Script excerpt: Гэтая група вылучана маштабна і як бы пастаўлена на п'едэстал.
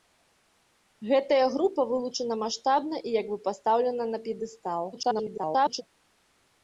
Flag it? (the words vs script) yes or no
yes